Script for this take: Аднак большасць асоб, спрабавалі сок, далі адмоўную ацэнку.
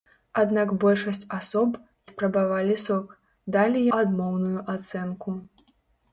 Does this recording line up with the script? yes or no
yes